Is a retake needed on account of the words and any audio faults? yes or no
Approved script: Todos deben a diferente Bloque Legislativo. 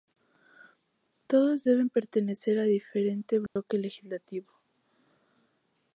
yes